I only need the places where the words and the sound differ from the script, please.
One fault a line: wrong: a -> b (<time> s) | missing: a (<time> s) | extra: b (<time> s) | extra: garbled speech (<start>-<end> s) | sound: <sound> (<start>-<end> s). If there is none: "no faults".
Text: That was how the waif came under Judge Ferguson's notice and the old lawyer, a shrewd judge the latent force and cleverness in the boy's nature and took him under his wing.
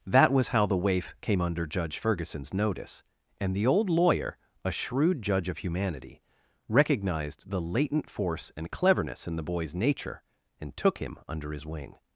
extra: of humanity recognized (5.5 s)